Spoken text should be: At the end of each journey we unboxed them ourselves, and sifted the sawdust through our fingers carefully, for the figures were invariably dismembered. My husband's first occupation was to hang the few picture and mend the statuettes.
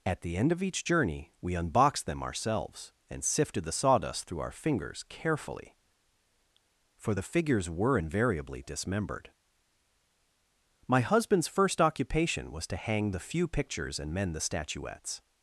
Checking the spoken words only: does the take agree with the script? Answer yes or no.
no